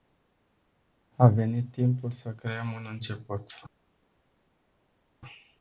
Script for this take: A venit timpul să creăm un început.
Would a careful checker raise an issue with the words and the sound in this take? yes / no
no